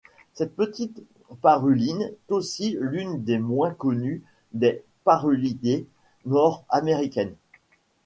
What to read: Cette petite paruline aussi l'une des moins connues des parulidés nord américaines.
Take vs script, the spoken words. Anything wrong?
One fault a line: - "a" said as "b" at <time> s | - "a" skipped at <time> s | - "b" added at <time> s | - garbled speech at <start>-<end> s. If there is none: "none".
none